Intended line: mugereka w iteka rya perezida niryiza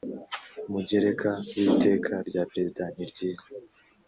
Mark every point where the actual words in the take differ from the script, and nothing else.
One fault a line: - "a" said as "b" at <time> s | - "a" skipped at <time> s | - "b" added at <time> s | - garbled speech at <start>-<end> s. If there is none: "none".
none